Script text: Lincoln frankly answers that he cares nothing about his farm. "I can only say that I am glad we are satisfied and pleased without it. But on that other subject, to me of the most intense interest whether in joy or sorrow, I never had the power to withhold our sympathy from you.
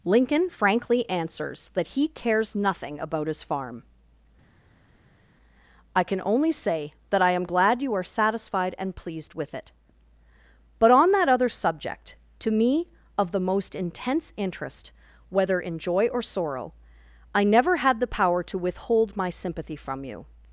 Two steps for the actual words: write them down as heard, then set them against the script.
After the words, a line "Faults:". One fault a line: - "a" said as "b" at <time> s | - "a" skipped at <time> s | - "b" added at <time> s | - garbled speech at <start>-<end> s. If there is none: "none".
Lincoln frankly answers that he cares nothing about his farm. "I can only say that I am glad you are satisfied and pleased with it. But on that other subject, to me of the most intense interest whether in joy or sorrow, I never had the power to withhold my sympathy from you.
Faults:
- "we" said as "you" at 7.8 s
- "without" said as "with" at 9.3 s
- "our" said as "my" at 19.1 s